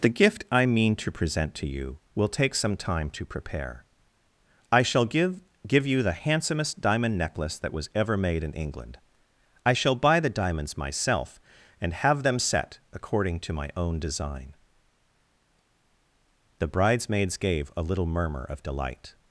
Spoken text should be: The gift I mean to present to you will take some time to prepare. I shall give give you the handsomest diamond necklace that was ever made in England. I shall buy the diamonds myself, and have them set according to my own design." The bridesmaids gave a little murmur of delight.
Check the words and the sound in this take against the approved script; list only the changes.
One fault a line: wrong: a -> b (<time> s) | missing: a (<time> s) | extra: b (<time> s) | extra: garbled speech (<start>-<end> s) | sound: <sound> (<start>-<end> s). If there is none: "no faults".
no faults